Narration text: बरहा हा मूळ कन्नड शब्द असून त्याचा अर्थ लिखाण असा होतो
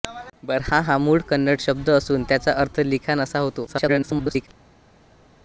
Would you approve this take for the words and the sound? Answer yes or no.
no